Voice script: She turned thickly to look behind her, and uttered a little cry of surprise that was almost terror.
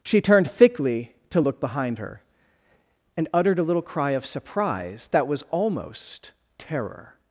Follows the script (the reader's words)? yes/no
yes